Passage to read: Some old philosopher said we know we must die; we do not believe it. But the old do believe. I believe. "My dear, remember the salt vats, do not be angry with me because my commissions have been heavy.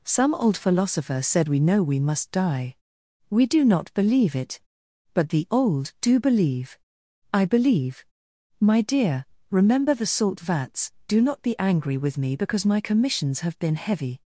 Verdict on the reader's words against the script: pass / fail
pass